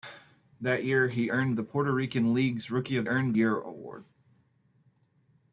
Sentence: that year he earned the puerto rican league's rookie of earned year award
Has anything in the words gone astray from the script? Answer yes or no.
no